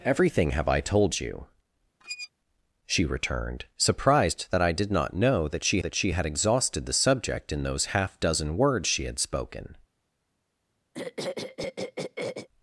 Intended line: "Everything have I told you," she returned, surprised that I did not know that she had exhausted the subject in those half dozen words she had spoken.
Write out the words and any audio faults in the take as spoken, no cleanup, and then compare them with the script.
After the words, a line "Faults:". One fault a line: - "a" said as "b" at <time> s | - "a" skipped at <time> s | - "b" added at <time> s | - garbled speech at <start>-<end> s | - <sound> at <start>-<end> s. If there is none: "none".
"Everything have I told you," she returned, surprised that I did not know that she that she had exhausted the subject in those half dozen words she had spoken.
Faults:
- squeak at 2.0-2.3 s
- "that she" added at 5.8 s
- throat clearing at 10.9-12.5 s